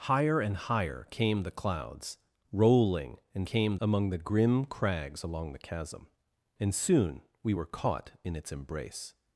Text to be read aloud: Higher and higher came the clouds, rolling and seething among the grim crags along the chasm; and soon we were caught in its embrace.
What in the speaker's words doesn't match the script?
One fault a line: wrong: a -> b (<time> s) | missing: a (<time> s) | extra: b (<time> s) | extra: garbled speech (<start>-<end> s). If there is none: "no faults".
wrong: seething -> came (3.5 s)